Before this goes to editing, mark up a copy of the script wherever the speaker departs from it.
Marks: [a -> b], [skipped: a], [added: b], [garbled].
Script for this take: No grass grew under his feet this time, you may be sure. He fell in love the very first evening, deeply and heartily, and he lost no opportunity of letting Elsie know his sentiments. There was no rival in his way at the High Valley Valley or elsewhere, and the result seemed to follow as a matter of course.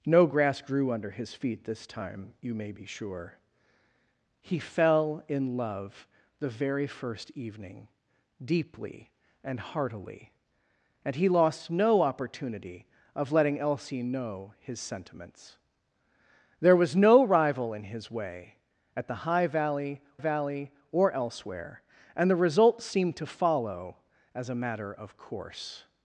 No grass grew under his feet this time, you may be sure. He fell in love the very first evening, deeply and heartily, and he lost no opportunity of letting Elsie know his sentiments. There was no rival in his way at the High Valley Valley or elsewhere, and the result seemed to follow as a matter of course.